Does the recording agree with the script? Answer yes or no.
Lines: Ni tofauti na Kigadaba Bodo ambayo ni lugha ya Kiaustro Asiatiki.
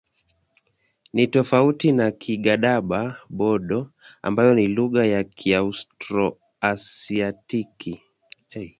yes